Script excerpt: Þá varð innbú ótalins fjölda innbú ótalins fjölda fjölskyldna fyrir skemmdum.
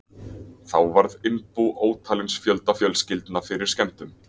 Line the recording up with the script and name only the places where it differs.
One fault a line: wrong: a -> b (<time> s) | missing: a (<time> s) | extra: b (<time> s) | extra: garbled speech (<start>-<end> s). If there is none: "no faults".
missing: innbú ótalins fjölda (2.8 s)